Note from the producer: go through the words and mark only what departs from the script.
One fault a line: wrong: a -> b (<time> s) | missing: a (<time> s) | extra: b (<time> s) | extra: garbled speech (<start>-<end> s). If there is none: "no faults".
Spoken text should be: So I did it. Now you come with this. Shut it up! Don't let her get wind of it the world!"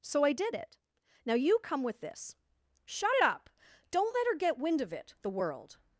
no faults